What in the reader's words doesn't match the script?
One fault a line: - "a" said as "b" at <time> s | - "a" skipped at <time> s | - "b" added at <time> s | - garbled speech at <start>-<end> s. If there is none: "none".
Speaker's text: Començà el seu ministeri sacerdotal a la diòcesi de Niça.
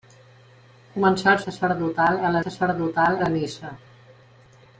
- "seu ministeri" skipped at 1.4 s
- "diòcesi" said as "sacerdotal" at 2.4 s